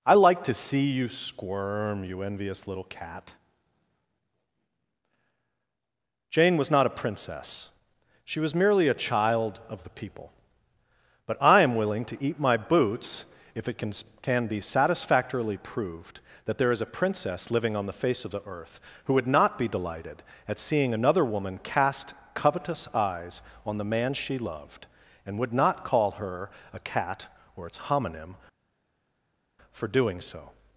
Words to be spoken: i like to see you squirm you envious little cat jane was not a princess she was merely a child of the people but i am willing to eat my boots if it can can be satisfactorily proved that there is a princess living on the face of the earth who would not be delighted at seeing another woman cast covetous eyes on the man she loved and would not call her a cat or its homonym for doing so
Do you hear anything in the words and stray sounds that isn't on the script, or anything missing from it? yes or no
no